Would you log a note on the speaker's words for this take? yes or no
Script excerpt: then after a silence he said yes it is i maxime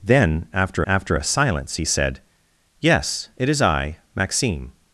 yes